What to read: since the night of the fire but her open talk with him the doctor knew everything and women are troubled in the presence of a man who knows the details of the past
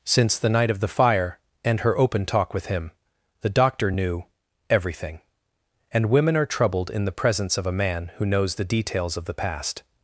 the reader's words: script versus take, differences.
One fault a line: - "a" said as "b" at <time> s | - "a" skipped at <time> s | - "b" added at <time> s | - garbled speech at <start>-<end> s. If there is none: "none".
- "but" said as "and" at 1.6 s